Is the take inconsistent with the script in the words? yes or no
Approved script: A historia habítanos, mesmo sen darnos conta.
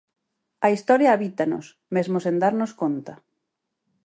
no